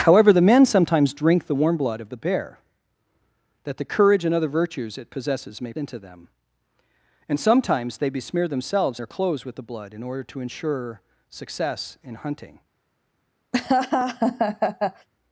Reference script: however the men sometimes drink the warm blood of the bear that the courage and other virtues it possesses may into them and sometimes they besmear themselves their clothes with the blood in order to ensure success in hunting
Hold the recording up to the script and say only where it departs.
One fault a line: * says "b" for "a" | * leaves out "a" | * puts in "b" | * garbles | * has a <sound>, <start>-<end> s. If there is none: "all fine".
* has a laugh, 13.5-15.1 s